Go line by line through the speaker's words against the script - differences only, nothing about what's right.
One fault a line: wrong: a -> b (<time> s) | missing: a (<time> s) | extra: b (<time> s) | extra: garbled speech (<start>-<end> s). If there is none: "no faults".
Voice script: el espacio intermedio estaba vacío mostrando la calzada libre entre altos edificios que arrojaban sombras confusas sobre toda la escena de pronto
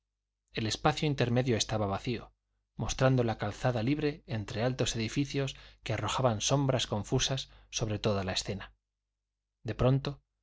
no faults